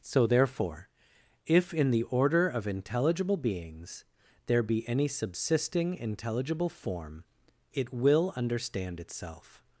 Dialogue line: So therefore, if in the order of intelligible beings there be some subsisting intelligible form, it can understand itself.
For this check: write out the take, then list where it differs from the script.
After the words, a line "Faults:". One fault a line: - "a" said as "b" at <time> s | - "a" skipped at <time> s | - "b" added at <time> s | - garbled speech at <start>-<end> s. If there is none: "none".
So therefore, if in the order of intelligible beings there be any subsisting intelligible form, it will understand itself.
Faults:
- "some" said as "any" at 4.9 s
- "can" said as "will" at 7.9 s